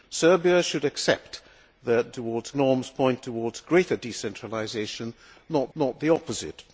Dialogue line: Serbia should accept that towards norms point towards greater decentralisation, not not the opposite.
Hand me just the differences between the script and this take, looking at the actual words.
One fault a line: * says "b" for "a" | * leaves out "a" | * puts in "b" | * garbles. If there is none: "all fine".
all fine